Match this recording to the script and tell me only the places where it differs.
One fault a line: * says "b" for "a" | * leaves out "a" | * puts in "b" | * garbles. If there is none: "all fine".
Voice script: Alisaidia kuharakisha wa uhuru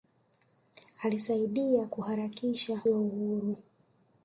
all fine